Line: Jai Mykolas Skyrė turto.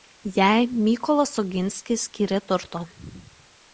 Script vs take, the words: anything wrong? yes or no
yes